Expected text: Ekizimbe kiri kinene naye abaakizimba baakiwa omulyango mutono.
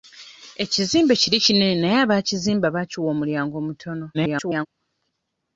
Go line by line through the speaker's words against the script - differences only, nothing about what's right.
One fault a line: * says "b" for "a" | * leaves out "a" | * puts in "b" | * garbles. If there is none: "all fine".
* garbles